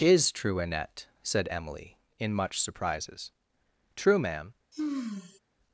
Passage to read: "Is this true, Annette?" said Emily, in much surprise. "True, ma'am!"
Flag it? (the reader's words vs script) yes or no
yes